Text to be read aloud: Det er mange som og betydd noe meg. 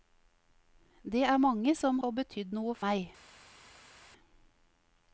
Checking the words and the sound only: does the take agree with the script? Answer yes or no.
yes